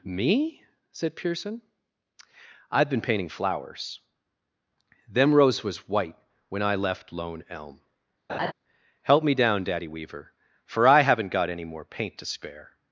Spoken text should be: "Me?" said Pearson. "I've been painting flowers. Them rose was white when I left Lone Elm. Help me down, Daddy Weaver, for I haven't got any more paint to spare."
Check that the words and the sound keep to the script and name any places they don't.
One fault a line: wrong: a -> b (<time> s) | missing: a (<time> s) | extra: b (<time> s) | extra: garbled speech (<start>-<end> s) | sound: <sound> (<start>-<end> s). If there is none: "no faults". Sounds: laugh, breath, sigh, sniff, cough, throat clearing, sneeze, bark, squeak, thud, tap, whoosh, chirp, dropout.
sound: laugh (8.3-8.5 s)